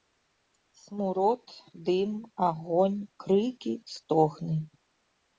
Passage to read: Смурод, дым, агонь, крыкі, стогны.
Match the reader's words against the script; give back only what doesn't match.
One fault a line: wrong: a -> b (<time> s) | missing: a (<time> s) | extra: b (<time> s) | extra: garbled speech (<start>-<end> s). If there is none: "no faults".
no faults